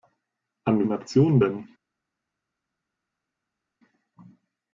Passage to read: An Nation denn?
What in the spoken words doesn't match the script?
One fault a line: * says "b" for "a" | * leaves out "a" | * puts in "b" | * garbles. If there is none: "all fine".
all fine